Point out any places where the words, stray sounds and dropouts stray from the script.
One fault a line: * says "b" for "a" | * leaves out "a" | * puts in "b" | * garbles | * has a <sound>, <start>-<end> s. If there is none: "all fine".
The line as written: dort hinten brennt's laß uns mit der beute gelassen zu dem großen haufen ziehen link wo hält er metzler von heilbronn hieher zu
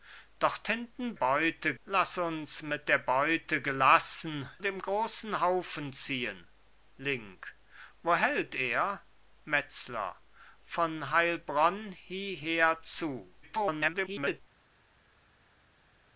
* says "beute" for "brennt's"
* leaves out "zu"
* garbles